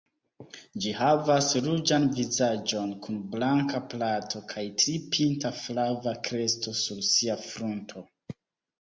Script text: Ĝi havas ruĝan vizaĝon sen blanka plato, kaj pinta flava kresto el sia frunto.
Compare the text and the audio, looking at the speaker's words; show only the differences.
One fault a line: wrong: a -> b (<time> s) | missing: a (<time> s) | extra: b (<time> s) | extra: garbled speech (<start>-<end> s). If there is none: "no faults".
wrong: sen -> kun (3.1 s)
extra: tri (4.9 s)
wrong: el -> sur (6.9 s)